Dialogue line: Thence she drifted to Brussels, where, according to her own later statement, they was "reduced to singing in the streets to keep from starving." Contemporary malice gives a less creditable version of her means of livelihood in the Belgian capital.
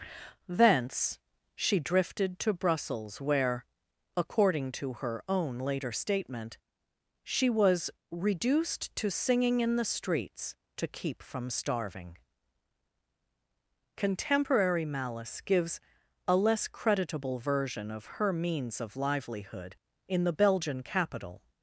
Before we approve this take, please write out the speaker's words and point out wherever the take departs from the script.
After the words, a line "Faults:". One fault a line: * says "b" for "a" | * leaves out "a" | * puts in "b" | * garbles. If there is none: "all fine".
Thence she drifted to Brussels, where, according to her own later statement, she was "reduced to singing in the streets to keep from starving." Contemporary malice gives a less creditable version of her means of livelihood in the Belgian capital.
Faults:
* says "she" for "they"